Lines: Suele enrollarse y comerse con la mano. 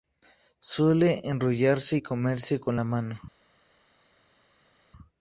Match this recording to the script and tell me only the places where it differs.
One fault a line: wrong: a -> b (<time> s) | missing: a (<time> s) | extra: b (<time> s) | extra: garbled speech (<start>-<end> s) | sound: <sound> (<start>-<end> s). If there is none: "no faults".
no faults